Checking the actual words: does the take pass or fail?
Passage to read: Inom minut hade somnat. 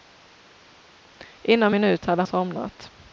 pass